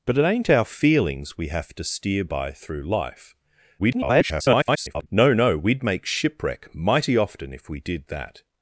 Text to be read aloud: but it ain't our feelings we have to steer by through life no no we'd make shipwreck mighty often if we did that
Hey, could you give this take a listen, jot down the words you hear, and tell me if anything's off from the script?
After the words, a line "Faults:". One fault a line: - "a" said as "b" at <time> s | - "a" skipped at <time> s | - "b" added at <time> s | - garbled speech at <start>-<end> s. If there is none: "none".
but it ain't our feelings we have to steer by through life [garbled] no no we'd make shipwreck mighty often if we did that
Faults:
- garbled speech at 3.8-5.1 s